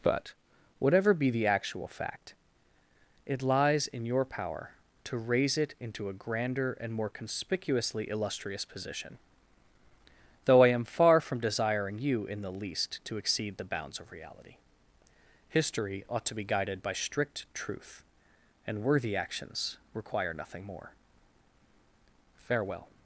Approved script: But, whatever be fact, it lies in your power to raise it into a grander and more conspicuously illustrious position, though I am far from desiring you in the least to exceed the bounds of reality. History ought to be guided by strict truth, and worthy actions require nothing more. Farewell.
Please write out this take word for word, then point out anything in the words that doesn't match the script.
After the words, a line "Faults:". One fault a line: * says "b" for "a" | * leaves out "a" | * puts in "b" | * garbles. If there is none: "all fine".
But, whatever be the actual fact, it lies in your power to raise it into a grander and more conspicuously illustrious position, though I am far from desiring you in the least to exceed the bounds of reality. History ought to be guided by strict truth, and worthy actions require nothing more. Farewell.
Faults:
* puts in "the actual"